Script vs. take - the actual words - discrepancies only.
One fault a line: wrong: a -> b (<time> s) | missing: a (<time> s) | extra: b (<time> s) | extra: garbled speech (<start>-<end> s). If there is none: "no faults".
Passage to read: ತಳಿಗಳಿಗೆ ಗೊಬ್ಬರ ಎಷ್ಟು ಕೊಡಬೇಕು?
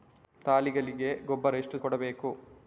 no faults